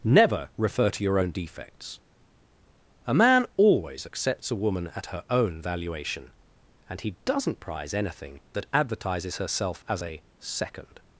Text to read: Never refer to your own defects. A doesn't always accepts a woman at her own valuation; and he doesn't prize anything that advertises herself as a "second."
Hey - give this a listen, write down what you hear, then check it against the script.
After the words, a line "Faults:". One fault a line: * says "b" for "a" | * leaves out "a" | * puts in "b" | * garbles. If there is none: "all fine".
Never refer to your own defects. A man always accepts a woman at her own valuation; and he doesn't prize anything that advertises herself as a "second."
Faults:
* says "man" for "doesn't"